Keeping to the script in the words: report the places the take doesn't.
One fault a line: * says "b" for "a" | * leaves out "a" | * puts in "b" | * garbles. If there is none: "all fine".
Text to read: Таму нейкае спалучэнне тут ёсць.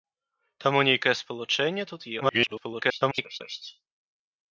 * garbles